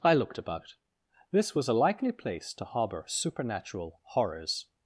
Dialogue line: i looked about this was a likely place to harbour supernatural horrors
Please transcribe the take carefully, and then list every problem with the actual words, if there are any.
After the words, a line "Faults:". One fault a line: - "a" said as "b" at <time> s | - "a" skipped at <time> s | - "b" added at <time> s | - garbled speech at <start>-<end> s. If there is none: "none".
i looked about this was a likely place to harbour supernatural horrors
Faults:
none